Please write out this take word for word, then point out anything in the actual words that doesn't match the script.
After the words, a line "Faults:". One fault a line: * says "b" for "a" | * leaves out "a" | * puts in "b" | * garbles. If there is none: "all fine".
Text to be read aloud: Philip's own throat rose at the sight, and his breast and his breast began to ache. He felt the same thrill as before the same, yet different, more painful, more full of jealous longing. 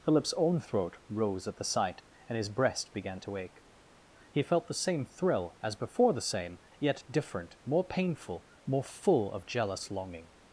Philip's own throat rose at the sight, and his breast began to ache. He felt the same thrill as before the same, yet different, more painful, more full of jealous longing.
Faults:
* leaves out "and his breast"